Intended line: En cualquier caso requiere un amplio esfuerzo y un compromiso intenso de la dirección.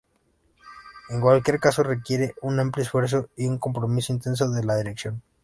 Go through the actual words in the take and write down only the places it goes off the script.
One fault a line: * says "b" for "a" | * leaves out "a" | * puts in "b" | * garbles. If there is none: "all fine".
all fine